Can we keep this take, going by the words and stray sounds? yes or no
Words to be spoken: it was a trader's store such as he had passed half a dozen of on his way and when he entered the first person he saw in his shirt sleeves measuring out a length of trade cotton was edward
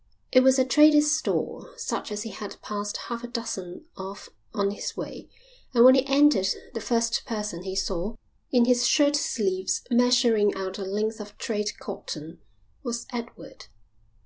yes